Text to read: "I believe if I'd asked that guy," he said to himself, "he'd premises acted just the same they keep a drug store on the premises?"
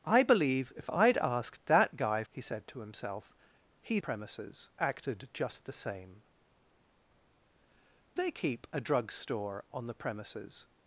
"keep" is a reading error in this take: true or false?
false